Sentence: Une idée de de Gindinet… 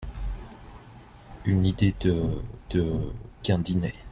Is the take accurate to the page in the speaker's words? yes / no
yes